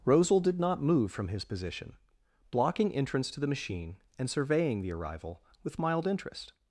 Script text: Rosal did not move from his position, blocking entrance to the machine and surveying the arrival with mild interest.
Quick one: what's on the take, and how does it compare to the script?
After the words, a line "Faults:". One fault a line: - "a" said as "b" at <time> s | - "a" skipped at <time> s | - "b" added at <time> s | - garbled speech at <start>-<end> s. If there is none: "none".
Rosal did not move from his position, blocking entrance to the machine and surveying the arrival with mild interest.
Faults:
none